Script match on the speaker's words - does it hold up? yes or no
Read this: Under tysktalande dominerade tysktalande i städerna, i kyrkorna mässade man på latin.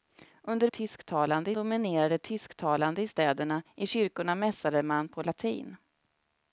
yes